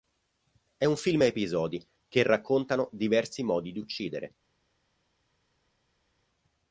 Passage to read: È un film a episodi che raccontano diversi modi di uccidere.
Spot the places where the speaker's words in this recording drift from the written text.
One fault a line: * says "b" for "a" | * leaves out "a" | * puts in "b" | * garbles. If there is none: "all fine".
all fine